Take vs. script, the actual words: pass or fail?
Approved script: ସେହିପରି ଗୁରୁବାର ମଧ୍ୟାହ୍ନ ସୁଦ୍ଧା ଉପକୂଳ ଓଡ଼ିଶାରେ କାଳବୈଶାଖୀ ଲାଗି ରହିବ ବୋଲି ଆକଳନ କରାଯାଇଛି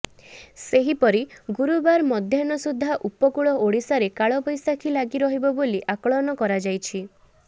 pass